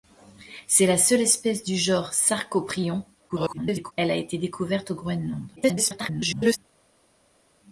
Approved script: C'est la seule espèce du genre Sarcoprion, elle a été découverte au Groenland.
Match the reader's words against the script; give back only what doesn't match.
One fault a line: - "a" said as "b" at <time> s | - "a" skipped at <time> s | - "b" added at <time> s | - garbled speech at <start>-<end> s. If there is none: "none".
- garbled speech at 3.3-3.9 s
- garbled speech at 5.6-6.6 s